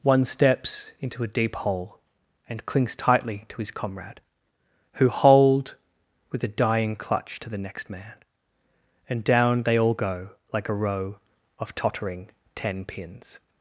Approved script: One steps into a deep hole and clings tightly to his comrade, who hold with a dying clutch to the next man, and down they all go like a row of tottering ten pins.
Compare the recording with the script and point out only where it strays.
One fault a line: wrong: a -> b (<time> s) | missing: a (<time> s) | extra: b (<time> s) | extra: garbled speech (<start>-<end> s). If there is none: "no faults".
no faults